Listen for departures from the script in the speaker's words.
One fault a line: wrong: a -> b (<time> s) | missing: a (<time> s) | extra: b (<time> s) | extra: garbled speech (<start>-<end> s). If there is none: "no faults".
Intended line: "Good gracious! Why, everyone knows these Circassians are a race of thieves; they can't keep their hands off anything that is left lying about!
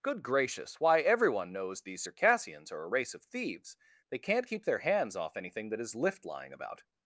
wrong: left -> lift (5.9 s)